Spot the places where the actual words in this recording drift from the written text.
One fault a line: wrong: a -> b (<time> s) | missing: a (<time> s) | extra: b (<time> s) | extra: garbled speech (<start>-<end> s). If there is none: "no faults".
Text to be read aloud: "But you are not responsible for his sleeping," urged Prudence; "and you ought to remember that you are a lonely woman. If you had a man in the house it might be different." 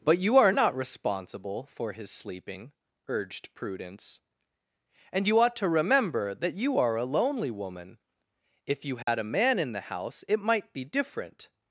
no faults